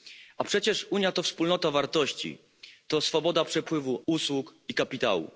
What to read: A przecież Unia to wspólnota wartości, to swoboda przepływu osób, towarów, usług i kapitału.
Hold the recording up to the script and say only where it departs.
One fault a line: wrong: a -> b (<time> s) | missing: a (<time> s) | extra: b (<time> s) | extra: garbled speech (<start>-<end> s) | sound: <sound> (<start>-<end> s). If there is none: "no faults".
missing: osób towarów (4.0 s)